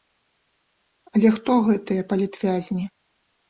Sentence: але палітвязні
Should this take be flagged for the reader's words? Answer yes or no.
yes